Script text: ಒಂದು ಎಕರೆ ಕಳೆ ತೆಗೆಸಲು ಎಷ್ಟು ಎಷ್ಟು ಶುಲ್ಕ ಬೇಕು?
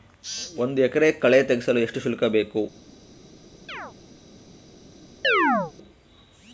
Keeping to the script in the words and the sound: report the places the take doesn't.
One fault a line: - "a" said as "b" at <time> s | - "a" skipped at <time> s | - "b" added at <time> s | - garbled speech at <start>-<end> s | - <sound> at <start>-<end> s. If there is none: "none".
- "ಎಷ್ಟು" skipped at 2.0 s
- chirp at 3.7-3.9 s
- chirp at 5.2-5.7 s